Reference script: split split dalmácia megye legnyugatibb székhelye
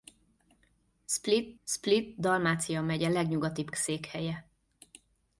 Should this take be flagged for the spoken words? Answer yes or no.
no